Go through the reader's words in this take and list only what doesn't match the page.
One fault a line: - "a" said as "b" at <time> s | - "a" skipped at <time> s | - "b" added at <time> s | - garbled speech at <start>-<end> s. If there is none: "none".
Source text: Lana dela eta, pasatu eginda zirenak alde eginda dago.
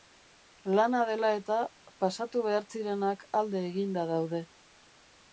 - "eginda" said as "behar" at 2.5 s
- "dago" said as "daude" at 4.1 s